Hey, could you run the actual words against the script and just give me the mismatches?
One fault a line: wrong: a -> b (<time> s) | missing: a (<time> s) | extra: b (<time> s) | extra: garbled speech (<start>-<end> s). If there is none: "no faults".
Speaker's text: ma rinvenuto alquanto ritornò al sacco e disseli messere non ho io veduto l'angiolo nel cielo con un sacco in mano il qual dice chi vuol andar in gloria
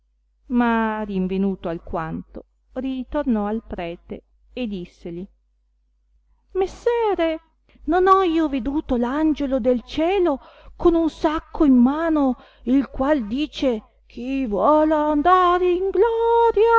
wrong: sacco -> prete (3.6 s)
wrong: nel -> del (9.6 s)